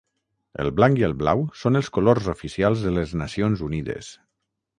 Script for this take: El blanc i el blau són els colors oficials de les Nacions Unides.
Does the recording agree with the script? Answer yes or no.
yes